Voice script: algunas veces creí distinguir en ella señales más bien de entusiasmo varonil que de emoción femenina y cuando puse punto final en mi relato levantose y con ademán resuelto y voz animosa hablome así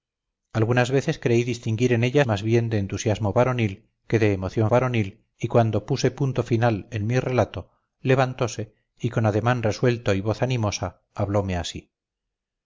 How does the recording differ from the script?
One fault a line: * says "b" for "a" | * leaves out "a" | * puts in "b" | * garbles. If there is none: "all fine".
* leaves out "señales"
* says "varonil" for "femenina"